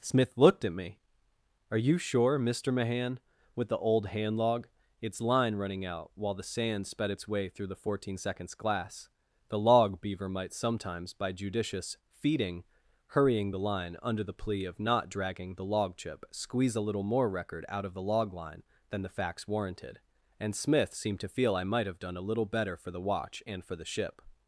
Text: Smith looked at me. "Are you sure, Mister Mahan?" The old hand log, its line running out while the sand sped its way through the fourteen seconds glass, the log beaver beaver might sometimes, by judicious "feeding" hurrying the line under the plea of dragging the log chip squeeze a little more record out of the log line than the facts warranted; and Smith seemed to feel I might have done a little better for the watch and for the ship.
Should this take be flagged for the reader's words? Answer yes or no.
yes